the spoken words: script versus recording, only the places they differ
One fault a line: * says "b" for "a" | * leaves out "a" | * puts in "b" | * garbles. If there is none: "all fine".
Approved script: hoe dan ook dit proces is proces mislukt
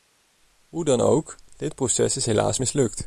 * says "helaas" for "proces"